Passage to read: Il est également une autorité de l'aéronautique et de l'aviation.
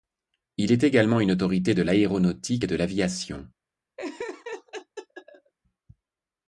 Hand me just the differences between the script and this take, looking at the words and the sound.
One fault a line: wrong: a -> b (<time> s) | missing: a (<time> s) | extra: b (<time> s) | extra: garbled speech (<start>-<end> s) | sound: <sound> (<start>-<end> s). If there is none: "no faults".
sound: laugh (4.0-5.5 s)